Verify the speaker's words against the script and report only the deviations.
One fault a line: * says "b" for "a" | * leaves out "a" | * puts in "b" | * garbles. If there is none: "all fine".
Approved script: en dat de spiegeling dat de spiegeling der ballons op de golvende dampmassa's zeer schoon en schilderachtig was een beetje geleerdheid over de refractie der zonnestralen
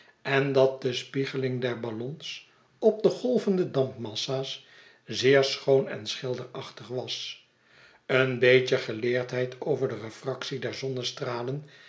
* leaves out "dat de spiegeling"